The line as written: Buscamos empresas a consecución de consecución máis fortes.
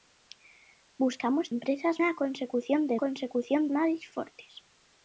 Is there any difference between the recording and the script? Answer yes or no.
no